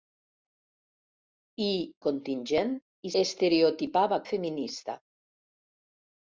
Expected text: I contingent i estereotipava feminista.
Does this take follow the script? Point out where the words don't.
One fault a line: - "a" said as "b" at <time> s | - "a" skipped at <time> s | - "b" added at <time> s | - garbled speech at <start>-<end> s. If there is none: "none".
none